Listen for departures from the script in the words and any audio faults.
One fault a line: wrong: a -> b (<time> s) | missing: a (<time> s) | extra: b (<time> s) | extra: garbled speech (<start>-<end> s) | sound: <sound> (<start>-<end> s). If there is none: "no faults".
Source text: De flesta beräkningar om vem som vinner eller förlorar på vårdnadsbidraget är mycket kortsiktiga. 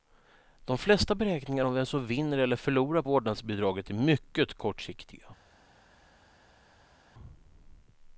missing: på (3.0 s)